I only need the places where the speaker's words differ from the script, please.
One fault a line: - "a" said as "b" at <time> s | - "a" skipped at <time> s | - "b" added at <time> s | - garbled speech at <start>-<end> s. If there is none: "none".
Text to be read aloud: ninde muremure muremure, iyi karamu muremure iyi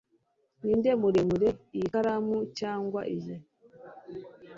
- "muremure" skipped at 1.5 s
- "muremure" said as "cyangwa" at 2.6 s